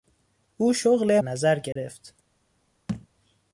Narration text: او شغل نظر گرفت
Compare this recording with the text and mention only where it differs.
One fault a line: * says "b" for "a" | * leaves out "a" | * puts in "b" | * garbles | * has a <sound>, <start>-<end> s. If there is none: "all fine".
* has a dropout, 1.7-1.8 s
* has a thud, 2.9-3.1 s